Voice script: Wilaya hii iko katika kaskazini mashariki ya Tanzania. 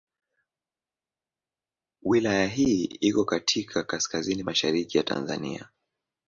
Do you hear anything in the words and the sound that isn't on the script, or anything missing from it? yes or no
no